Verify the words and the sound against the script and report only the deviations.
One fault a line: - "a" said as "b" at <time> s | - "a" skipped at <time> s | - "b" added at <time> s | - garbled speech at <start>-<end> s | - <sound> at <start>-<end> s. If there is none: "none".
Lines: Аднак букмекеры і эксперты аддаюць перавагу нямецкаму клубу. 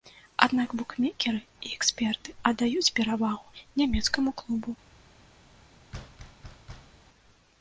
- thud at 5.9-7.0 s